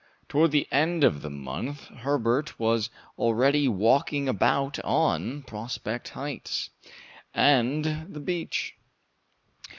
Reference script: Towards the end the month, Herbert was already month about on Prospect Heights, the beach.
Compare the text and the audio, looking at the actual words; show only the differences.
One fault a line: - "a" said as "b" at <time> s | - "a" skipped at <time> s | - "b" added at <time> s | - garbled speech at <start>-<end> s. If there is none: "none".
- "of" added at 1.0 s
- "month" said as "walking" at 3.7 s
- "and" added at 7.3 s